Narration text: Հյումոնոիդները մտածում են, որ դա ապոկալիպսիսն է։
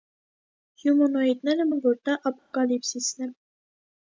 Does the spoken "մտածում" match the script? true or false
false